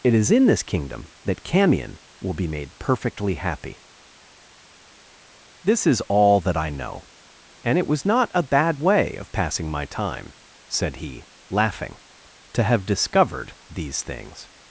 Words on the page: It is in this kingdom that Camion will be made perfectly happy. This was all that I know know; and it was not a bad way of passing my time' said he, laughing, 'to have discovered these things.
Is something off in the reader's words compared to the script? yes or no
yes